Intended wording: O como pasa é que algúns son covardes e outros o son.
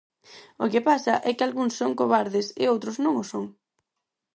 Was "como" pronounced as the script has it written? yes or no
no